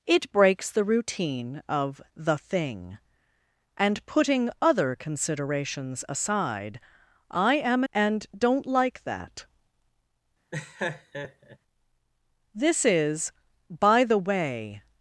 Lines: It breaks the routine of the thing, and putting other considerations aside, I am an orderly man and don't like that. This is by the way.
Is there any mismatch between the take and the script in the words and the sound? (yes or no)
yes